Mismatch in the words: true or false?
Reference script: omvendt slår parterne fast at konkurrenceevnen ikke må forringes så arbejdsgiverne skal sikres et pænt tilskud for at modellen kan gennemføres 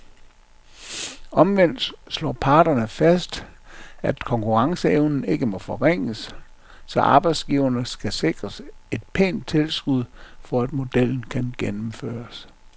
false